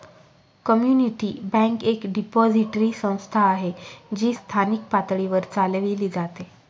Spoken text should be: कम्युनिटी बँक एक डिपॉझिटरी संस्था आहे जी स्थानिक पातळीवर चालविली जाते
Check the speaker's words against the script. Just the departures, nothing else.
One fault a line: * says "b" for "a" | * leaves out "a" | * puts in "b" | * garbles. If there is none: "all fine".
all fine